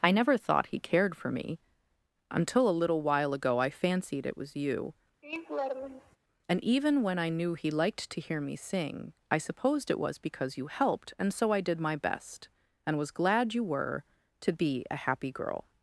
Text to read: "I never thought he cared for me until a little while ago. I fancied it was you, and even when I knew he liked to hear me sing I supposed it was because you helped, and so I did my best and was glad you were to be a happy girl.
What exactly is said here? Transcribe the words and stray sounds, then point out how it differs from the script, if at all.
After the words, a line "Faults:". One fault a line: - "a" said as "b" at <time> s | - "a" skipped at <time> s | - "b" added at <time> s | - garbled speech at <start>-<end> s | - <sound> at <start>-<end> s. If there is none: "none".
"I never thought he cared for me until a little while ago. I fancied it was you, and even when I knew he liked to hear me sing I supposed it was because you helped, and so I did my best and was glad you were to be a happy girl.
Faults:
- laugh at 5.2-6.2 s